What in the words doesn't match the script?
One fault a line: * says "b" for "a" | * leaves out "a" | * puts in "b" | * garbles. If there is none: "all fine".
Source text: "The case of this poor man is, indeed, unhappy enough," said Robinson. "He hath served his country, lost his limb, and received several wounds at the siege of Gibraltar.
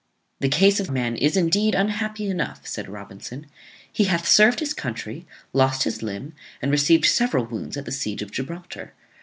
* leaves out "this poor"